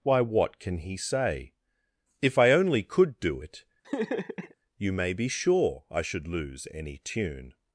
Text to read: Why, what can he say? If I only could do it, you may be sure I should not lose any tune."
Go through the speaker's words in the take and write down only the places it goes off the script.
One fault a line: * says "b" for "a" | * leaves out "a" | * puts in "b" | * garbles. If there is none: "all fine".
* leaves out "not"